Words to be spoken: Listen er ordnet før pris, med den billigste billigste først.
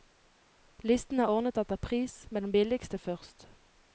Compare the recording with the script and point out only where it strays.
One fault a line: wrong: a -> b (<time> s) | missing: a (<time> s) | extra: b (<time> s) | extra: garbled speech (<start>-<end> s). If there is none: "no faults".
wrong: før -> etter (1.6 s)
missing: billigste (3.0 s)